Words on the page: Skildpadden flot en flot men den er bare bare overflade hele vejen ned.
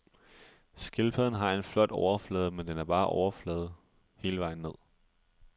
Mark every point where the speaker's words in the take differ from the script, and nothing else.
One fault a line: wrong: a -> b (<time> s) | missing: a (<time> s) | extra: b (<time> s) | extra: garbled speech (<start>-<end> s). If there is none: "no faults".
wrong: flot -> har (1.3 s)
extra: overflade (1.9 s)
missing: bare (3.1 s)